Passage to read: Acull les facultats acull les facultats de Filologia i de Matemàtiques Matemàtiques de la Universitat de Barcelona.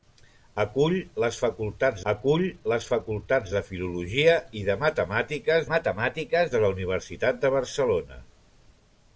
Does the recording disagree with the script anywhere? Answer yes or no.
no